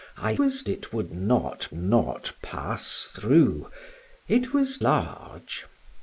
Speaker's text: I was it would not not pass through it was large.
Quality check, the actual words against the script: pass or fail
pass